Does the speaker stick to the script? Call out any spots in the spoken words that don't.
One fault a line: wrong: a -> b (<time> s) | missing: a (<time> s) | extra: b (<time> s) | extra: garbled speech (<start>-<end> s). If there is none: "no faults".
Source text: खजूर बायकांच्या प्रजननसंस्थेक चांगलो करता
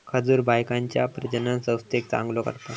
no faults